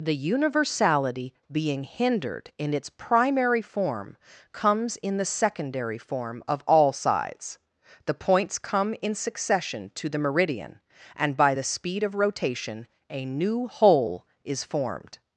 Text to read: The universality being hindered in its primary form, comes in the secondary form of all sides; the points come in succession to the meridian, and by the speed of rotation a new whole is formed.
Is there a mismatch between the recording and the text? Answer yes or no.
no